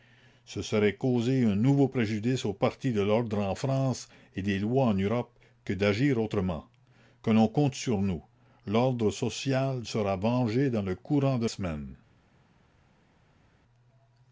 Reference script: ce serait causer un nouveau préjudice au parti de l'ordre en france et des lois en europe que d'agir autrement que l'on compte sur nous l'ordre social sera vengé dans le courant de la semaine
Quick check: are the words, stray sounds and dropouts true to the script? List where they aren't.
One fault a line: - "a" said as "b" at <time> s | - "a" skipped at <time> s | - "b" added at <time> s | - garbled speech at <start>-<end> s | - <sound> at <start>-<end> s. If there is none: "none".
- "la" skipped at 11.4 s